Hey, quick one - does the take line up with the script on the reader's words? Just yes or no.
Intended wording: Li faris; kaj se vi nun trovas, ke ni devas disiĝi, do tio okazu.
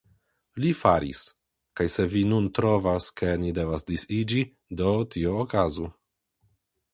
yes